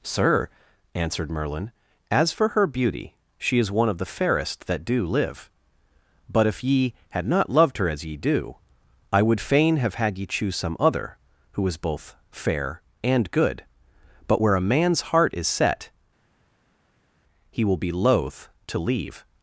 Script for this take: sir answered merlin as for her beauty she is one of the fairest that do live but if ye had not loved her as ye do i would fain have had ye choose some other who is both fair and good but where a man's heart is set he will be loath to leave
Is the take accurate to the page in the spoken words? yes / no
yes